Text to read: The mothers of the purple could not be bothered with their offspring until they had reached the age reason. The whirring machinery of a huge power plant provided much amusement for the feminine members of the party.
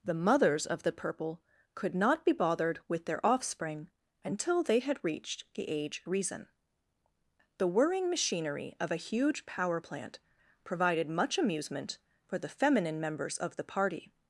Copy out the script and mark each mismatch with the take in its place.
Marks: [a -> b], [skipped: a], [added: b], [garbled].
The mothers of the purple could not be bothered with their offspring until they had reached the age reason. The whirring machinery of a huge power plant provided much amusement for the feminine members of the party.